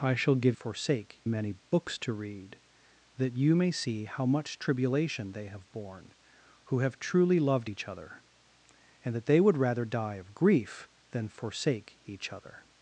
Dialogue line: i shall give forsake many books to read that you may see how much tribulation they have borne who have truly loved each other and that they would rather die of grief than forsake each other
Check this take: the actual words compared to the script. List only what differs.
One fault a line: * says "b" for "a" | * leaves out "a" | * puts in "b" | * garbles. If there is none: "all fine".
all fine